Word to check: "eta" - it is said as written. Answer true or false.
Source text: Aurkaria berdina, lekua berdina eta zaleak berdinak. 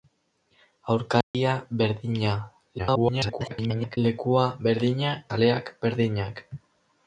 false